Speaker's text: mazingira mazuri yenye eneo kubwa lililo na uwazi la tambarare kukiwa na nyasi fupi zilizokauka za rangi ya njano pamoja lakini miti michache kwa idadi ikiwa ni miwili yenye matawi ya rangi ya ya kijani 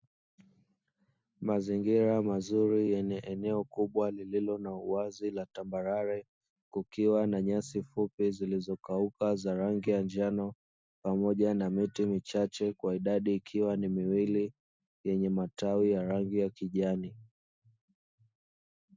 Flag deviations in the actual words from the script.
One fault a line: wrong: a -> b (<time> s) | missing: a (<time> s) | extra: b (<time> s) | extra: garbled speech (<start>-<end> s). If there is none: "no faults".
wrong: lakini -> na (11.5 s)
missing: ya (16.5 s)